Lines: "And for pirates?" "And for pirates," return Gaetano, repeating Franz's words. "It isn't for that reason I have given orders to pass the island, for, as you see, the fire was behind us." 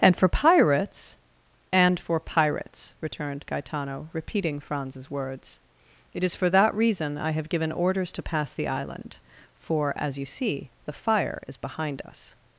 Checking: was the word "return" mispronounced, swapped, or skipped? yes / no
yes